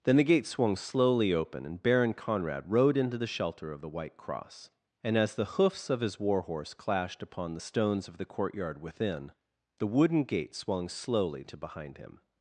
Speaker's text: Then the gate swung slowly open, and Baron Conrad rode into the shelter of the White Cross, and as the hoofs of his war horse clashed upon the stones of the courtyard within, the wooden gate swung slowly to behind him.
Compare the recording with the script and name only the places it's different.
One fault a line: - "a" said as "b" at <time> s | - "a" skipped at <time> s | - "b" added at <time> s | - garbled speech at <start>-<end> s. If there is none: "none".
none